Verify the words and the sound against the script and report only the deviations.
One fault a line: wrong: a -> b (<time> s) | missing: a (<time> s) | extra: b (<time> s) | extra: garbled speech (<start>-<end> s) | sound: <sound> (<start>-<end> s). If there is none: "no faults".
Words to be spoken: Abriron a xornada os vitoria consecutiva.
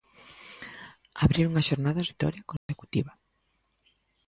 sound: dropout (2.6-2.7 s)